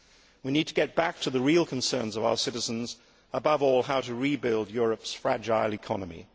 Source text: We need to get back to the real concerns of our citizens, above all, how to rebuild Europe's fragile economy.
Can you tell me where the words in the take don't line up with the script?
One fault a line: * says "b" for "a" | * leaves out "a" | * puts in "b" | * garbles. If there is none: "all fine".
all fine